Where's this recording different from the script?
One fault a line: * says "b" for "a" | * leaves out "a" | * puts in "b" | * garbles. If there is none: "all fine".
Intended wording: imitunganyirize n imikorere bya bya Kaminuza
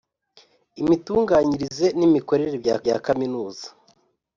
all fine